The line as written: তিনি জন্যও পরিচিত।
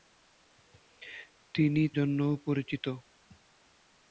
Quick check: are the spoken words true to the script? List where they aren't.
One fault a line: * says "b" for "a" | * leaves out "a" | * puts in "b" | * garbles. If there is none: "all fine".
all fine